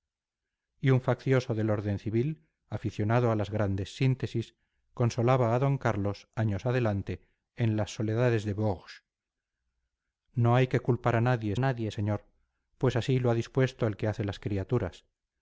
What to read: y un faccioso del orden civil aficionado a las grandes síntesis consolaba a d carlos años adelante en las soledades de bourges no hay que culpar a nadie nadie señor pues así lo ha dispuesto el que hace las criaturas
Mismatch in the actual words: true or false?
false